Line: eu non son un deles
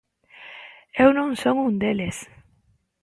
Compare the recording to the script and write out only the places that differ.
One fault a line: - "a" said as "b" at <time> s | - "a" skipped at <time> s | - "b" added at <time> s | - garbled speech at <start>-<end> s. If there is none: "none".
none